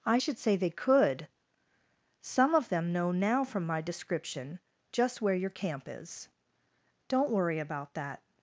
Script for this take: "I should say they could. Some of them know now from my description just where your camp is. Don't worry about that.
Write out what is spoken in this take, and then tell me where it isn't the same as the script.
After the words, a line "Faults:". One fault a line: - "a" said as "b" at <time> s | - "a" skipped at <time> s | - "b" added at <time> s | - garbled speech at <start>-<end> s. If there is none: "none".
"I should say they could. Some of them know now from my description just where your camp is. Don't worry about that.
Faults:
none